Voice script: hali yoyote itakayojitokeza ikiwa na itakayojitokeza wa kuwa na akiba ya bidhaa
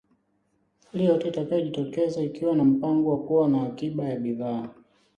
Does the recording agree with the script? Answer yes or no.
no